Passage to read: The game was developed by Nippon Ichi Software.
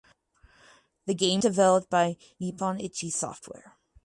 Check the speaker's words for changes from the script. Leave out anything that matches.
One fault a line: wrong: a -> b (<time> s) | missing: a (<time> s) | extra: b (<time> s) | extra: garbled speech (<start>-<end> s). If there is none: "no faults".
missing: was (1.4 s)